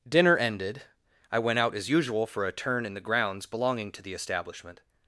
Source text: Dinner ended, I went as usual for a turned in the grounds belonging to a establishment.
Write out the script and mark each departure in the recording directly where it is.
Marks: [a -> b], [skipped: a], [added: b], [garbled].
Dinner ended, I went [added: out] as usual for a [turned -> turn] in the grounds belonging to [a -> the] establishment.